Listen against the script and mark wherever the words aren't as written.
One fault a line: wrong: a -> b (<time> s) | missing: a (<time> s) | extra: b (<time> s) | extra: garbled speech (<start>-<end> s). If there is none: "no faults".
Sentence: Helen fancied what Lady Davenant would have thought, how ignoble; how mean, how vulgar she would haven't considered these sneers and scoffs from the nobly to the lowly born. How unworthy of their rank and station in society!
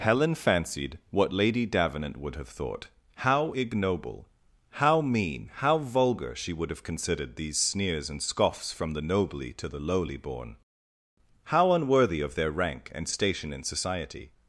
wrong: haven't -> have (6.7 s)